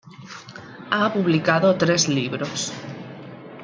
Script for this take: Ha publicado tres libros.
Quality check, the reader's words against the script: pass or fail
pass